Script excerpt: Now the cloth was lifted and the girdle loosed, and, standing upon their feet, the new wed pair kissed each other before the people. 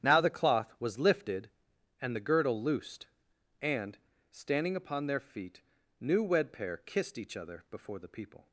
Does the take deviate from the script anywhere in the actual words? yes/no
yes